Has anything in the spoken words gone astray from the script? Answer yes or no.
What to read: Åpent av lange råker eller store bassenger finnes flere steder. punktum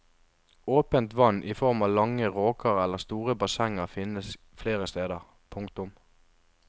yes